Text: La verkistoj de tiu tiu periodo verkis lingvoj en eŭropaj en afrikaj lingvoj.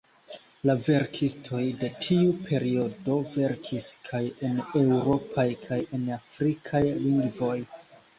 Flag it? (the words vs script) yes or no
yes